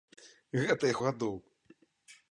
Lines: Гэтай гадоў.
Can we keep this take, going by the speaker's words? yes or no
yes